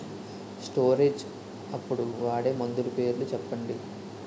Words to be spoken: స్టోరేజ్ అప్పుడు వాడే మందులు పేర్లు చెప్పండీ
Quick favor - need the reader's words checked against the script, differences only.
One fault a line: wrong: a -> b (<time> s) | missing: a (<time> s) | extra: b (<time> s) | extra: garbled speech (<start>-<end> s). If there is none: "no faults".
no faults